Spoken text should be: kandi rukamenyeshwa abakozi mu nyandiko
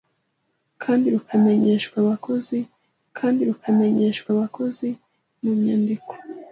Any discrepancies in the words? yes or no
yes